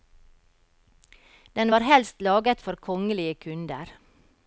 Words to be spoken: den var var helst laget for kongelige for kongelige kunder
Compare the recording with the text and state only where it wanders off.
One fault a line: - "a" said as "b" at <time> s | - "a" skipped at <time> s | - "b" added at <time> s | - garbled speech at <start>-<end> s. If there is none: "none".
- "var" skipped at 1.9 s
- "for kongelige" skipped at 3.4 s